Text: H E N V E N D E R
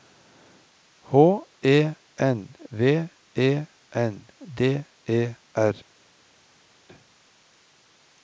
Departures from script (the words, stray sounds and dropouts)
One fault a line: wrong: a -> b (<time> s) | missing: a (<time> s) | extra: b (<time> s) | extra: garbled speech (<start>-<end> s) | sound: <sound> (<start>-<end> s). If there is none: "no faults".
no faults